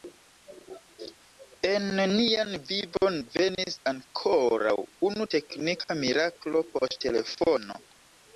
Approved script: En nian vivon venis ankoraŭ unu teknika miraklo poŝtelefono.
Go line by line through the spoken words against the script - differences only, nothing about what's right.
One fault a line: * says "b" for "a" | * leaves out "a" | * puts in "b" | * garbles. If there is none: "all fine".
all fine